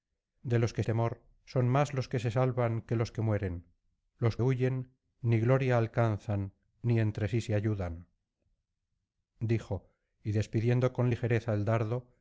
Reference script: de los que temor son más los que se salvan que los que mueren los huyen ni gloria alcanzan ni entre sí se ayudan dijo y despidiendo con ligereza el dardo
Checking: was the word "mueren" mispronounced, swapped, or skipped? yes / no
no